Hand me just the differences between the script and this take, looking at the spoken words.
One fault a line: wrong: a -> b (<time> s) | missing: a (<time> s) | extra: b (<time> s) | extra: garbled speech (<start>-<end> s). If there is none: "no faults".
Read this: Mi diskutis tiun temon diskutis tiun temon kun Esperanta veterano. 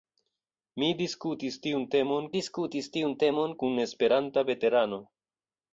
no faults